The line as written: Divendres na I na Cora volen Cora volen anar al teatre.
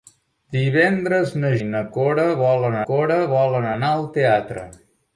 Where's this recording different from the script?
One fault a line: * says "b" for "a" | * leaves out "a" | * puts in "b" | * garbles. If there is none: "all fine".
all fine